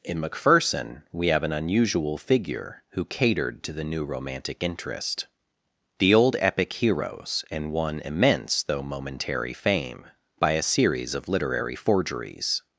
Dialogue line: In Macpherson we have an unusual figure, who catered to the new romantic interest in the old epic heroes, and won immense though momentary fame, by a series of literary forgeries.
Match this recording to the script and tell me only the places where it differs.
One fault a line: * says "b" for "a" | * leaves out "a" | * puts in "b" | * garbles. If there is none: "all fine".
* leaves out "in"